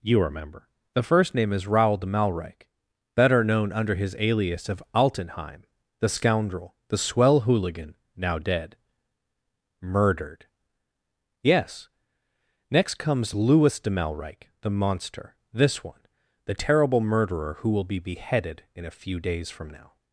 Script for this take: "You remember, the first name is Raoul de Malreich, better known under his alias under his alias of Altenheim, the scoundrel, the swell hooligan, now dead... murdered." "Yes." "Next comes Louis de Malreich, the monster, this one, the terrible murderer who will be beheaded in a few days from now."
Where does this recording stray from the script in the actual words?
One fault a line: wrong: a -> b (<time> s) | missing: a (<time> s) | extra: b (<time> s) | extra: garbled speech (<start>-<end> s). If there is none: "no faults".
missing: under his alias (4.7 s)